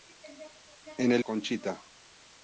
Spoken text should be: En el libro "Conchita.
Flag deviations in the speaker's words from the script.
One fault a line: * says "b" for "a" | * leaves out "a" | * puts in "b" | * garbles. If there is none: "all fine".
* leaves out "libro"